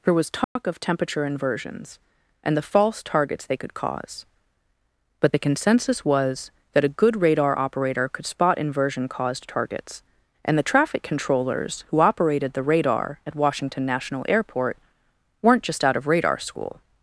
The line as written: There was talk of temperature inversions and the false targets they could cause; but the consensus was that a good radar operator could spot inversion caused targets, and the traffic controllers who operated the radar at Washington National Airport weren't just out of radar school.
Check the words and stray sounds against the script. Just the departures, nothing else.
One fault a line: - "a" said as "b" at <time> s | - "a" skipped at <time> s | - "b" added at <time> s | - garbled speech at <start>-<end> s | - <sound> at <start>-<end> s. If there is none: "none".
- dropout at 0.4-0.6 s